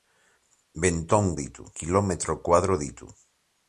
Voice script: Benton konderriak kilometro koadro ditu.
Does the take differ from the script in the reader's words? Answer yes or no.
yes